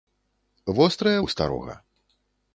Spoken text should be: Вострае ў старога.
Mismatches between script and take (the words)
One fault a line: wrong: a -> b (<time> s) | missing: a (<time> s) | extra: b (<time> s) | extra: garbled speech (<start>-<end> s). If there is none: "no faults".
no faults